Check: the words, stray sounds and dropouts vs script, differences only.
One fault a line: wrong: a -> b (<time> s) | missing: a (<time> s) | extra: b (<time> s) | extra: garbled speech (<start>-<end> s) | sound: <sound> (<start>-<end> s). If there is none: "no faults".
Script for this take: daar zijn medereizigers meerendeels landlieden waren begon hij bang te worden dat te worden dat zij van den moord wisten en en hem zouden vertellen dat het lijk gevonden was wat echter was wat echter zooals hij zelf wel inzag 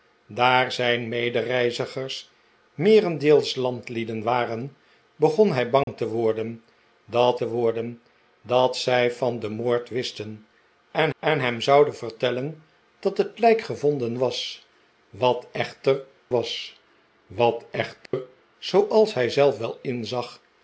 sound: dropout (5.8-5.9 s)
sound: dropout (18.1-18.1 s)